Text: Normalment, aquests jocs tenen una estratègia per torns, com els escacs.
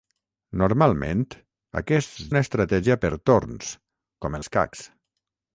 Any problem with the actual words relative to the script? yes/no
yes